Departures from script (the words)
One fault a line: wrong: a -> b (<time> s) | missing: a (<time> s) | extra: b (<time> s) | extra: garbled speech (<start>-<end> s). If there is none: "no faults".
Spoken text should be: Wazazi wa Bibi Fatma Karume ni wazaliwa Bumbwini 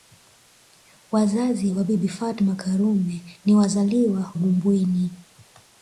no faults